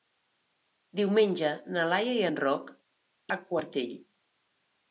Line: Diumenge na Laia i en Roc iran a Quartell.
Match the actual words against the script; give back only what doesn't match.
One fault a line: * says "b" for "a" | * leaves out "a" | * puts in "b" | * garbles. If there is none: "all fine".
* leaves out "iran"